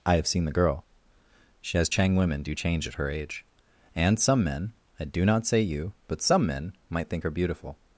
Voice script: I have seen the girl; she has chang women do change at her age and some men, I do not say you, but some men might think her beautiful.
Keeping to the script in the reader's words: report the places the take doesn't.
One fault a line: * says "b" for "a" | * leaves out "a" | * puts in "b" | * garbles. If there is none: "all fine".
all fine